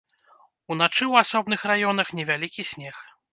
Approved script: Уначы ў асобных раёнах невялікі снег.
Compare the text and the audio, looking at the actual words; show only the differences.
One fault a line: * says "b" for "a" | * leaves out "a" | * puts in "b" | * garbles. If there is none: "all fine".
all fine